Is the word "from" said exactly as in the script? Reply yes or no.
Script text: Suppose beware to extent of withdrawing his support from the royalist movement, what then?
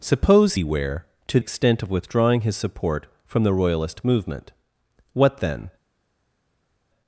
yes